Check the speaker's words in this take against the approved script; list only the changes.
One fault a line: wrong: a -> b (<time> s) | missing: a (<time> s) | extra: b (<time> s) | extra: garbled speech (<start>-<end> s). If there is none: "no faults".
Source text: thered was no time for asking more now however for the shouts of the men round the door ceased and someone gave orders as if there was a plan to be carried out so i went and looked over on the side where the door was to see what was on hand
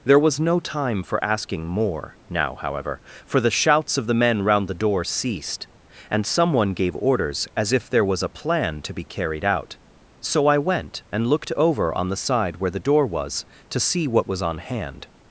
wrong: thered -> there (0.0 s)